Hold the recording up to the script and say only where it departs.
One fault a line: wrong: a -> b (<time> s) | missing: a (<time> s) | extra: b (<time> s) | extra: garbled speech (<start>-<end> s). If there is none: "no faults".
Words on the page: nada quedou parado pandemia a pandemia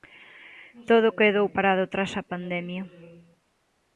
wrong: nada -> todo (0.9 s)
wrong: pandemia -> tras (1.9 s)